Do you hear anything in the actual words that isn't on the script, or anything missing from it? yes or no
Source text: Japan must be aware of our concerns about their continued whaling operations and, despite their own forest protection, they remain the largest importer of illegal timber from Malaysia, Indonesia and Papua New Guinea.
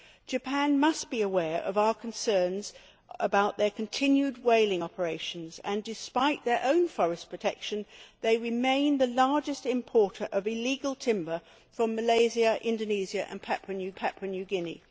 yes